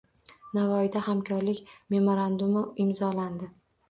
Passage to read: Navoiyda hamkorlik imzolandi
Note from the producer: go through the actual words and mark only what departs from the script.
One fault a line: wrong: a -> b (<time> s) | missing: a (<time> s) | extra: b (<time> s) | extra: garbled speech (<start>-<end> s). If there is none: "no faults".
extra: memorandumi (2.0 s)